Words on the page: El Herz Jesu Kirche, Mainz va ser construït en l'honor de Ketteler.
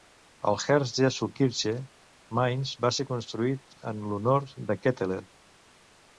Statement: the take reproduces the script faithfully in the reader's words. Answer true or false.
true